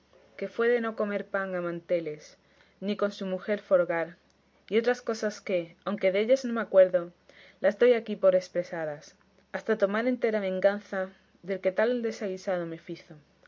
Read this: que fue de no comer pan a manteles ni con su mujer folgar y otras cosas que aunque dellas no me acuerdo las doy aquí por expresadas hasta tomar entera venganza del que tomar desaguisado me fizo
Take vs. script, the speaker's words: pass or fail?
fail